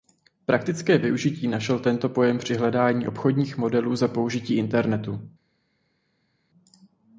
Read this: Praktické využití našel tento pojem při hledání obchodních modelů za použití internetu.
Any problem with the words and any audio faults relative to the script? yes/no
no